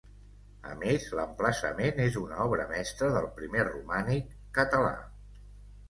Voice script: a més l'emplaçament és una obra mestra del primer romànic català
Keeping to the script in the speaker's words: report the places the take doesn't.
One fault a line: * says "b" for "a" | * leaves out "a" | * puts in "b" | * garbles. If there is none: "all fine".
all fine